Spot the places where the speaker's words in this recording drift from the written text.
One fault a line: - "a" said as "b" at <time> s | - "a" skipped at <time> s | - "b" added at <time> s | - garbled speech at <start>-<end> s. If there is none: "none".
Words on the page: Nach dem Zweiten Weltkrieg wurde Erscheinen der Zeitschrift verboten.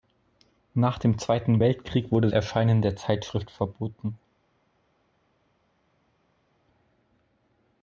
none